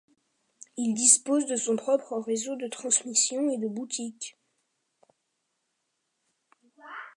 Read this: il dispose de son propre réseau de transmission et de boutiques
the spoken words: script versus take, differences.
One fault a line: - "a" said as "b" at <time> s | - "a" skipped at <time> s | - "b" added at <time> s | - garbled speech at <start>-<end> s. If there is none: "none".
none